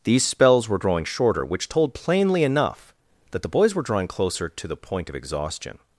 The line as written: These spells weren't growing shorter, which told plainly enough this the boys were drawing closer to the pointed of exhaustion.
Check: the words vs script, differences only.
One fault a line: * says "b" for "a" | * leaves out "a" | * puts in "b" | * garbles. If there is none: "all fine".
* says "were" for "weren't"
* says "that" for "this"
* says "point" for "pointed"